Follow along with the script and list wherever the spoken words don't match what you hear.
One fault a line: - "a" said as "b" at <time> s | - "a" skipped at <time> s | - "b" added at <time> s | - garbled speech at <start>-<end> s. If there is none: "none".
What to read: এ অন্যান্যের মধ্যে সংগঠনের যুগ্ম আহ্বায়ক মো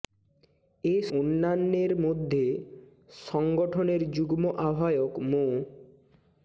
none